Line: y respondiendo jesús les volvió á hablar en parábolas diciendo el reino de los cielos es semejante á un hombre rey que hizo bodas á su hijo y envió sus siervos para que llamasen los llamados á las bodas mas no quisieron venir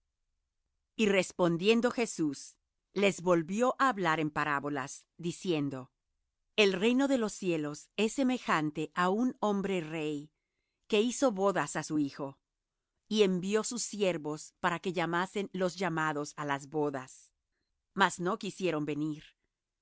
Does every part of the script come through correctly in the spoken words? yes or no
yes